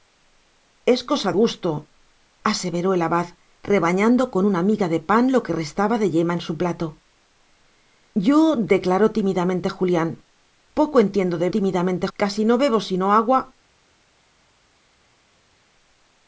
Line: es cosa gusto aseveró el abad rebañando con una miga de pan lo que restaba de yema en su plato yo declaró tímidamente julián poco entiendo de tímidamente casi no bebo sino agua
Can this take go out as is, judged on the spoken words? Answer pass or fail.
pass